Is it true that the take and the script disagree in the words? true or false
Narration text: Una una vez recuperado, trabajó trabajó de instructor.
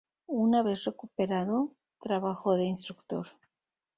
true